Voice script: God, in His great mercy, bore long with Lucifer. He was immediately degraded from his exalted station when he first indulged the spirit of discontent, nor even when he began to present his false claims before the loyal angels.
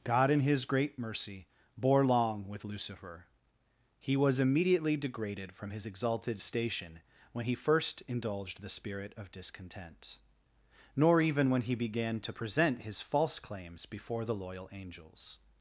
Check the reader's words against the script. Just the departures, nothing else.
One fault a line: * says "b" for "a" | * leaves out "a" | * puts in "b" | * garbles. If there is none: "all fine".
all fine